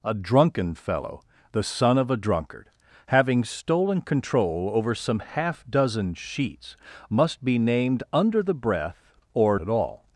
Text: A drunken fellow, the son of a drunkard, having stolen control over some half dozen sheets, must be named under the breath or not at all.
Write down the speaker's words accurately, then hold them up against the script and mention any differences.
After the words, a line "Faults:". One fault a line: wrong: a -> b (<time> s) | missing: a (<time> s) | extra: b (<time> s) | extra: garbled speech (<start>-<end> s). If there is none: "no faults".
A drunken fellow, the son of a drunkard, having stolen control over some half dozen sheets, must be named under the breath or at all.
Faults:
missing: not (9.6 s)